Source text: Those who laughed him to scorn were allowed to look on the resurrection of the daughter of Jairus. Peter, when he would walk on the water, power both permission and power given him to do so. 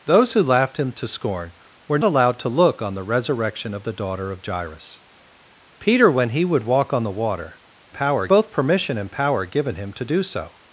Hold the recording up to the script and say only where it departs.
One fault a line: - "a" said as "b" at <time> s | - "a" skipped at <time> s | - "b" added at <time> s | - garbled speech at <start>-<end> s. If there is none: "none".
none